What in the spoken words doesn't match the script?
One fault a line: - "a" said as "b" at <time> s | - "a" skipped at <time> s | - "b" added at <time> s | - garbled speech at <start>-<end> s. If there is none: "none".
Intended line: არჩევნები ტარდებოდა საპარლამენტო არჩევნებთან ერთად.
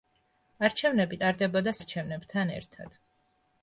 - "საპარლამენტო" skipped at 1.7 s